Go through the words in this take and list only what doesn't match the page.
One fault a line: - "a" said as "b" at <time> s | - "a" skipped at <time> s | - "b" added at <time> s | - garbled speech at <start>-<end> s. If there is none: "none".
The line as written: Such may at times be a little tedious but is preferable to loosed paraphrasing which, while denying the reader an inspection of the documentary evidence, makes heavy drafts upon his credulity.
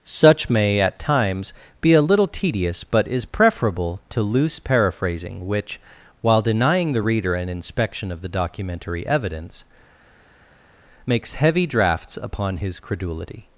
- "loosed" said as "loose" at 4.2 s